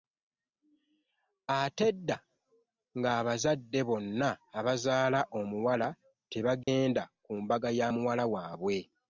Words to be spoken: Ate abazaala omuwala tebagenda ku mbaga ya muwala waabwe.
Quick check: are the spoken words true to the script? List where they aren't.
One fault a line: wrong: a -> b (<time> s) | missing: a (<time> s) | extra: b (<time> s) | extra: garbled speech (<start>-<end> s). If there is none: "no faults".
extra: edda ng'abazadde bonna (1.9 s)